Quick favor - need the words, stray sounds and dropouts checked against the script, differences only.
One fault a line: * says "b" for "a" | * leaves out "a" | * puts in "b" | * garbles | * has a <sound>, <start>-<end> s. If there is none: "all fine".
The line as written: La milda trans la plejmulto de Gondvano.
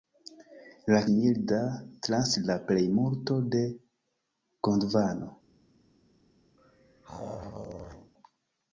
* has a throat clearing, 6.6-8.1 s